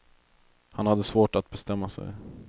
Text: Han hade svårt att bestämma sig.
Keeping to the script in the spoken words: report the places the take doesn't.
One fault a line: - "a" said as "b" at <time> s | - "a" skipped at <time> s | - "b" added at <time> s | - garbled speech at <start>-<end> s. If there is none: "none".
none